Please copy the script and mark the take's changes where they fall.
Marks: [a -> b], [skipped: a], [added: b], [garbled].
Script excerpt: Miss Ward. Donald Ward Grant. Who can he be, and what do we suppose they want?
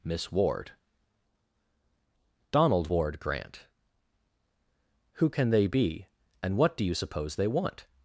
Miss Ward. Donald Ward Grant. Who can [he -> they] be, and what do [we -> you] suppose they want?